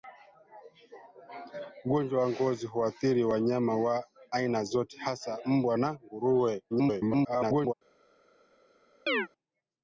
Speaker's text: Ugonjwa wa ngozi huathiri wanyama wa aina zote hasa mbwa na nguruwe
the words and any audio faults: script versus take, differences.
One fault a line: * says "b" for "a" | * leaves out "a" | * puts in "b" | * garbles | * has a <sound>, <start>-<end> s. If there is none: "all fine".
* garbles
* has a chirp, 9.1-9.3 s